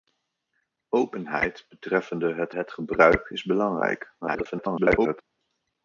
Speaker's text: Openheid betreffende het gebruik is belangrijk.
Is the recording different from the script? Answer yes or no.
yes